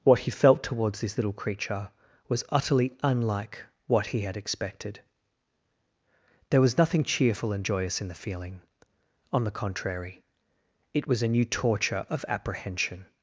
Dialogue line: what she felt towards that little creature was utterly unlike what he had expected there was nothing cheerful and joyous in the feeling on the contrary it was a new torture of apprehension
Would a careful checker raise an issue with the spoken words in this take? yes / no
yes